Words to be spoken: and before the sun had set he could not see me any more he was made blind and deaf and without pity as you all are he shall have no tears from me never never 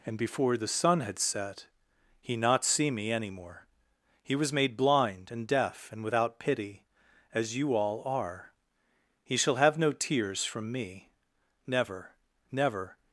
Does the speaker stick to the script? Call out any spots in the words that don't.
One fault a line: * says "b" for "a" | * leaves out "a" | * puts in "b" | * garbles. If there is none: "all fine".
* leaves out "could"